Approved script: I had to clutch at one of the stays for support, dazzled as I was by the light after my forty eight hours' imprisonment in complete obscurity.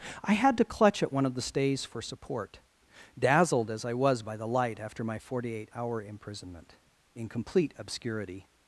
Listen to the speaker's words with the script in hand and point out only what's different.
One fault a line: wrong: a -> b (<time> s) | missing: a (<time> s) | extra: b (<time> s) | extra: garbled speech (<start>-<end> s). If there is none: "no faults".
wrong: hours -> hour (5.7 s)